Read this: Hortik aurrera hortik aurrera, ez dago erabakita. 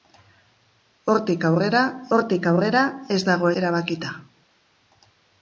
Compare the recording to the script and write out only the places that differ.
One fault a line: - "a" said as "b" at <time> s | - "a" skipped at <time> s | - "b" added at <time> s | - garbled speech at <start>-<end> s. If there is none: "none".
none